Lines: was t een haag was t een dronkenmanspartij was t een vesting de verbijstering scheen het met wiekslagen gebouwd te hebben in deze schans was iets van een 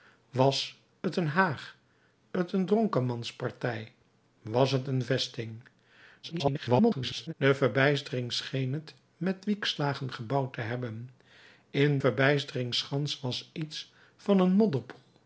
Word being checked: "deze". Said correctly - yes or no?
no